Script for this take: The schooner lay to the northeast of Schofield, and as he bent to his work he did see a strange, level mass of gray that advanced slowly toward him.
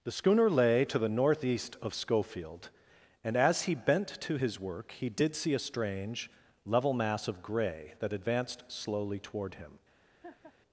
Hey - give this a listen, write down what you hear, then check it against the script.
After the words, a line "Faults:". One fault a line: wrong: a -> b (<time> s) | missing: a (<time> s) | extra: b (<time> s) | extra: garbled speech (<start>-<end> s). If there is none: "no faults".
The schooner lay to the northeast of Schofield, and as he bent to his work he did see a strange, level mass of gray that advanced slowly toward him.
Faults:
no faults